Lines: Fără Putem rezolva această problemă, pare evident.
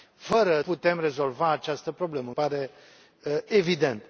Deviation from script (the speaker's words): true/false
false